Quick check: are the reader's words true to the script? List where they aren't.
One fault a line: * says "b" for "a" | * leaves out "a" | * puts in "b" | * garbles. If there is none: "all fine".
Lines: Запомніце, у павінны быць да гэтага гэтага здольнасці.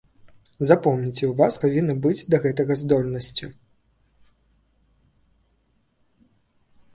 * puts in "вас"
* leaves out "гэтага"